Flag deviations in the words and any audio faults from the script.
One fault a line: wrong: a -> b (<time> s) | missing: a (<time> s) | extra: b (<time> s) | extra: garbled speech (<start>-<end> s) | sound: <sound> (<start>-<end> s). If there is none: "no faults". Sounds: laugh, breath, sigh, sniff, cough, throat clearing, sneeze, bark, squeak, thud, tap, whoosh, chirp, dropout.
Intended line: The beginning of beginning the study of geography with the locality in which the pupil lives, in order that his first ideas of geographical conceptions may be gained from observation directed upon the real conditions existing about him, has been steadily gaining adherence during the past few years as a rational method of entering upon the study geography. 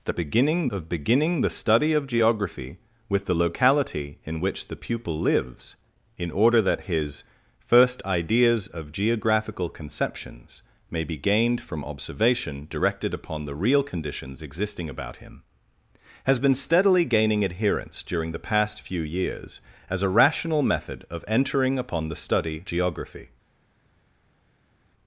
no faults